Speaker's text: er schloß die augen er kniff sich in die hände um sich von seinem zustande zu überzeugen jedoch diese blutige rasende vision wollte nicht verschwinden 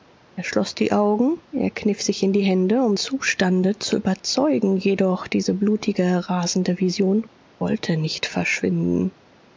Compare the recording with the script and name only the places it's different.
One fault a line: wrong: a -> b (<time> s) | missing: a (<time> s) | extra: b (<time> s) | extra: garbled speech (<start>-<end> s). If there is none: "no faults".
missing: sich von seinem (3.0 s)